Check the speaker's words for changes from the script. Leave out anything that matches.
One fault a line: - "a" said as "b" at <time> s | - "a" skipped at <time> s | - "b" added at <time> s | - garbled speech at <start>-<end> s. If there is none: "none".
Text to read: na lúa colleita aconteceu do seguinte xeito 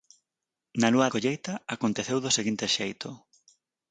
none